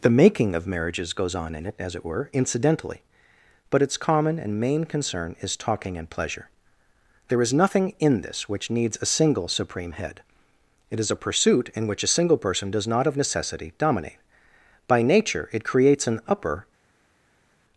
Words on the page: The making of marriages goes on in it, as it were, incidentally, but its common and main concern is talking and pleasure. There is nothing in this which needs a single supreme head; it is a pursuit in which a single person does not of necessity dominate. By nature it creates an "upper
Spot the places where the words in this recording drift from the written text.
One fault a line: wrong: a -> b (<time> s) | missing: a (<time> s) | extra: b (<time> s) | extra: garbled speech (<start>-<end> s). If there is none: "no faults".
no faults